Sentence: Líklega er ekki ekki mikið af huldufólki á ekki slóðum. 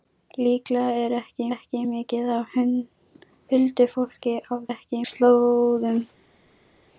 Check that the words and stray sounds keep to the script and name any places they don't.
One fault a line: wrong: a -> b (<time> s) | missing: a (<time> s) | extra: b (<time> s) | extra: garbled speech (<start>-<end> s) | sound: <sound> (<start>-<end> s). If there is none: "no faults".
no faults